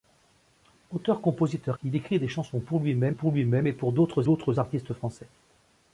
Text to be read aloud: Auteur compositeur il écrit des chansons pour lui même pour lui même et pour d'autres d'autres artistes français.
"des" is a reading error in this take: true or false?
false